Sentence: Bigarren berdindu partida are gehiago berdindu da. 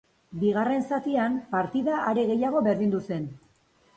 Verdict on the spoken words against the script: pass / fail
fail